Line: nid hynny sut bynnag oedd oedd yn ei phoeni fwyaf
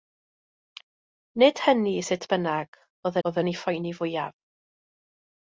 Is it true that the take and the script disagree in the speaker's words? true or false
false